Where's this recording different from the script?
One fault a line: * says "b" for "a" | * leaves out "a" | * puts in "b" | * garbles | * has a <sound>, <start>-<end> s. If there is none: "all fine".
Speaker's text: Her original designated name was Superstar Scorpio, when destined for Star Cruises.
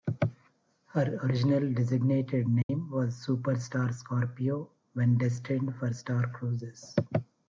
* has a dropout, 2.6-2.7 s